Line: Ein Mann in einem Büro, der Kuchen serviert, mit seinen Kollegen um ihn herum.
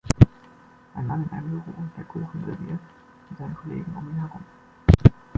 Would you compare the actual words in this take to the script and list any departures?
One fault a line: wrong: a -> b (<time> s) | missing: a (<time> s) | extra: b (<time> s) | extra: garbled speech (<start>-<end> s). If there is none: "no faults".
no faults